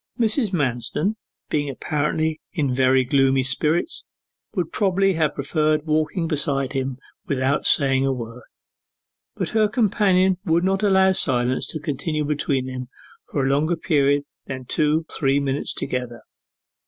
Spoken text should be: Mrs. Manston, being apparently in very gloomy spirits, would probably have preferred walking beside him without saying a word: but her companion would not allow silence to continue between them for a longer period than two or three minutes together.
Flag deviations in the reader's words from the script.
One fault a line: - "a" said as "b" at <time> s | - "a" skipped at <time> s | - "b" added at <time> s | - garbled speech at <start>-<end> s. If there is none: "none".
- "or" skipped at 15.1 s